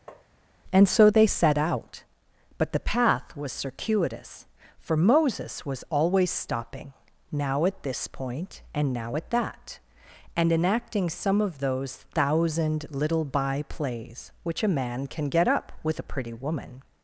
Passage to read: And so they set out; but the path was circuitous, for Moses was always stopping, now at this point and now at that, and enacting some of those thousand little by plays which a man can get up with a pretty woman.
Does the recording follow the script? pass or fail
pass